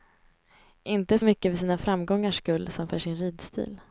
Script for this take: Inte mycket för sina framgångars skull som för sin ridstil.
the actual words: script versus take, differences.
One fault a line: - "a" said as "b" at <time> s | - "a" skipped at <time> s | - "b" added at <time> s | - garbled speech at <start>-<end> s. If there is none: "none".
none